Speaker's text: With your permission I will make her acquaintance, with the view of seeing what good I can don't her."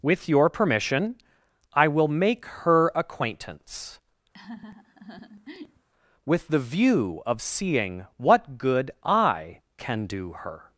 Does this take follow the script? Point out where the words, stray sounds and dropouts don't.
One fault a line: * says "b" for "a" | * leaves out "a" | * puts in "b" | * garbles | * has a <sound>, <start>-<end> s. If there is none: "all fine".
* has a laugh, 4.3-5.9 s
* says "do" for "don't"